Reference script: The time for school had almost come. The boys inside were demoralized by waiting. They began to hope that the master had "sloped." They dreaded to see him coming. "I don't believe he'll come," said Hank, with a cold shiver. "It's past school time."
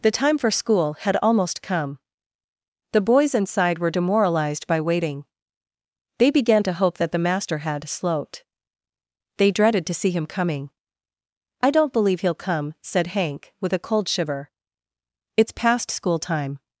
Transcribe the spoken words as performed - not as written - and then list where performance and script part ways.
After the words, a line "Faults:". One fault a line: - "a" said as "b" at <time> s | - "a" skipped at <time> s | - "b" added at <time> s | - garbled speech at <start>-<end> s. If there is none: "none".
The time for school had almost come. The boys inside were demoralized by waiting. They began to hope that the master had "sloped." They dreaded to see him coming. "I don't believe he'll come," said Hank, with a cold shiver. "It's past school time."
Faults:
none